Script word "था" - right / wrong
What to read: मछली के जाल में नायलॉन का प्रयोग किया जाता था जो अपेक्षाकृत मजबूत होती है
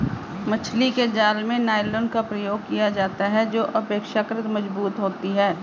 wrong